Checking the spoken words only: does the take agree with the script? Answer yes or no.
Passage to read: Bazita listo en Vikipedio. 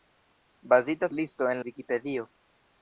yes